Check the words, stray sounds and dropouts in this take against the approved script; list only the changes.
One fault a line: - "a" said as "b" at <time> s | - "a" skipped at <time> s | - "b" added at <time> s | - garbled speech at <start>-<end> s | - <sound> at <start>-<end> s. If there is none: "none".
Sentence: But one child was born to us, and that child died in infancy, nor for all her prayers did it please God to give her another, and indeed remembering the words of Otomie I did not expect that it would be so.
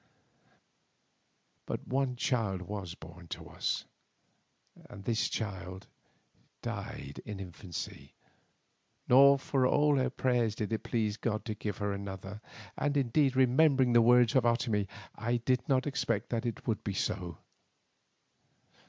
- "that" said as "this" at 5.0 s